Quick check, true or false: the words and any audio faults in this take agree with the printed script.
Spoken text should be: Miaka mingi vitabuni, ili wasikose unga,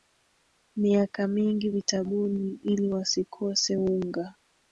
true